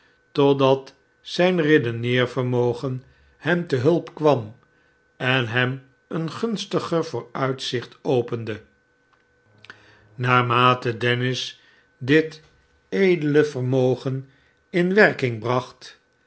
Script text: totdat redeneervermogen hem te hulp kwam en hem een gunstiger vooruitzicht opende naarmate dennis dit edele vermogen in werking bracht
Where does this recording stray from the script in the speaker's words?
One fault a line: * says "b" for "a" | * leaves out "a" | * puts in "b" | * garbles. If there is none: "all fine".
* puts in "zijn"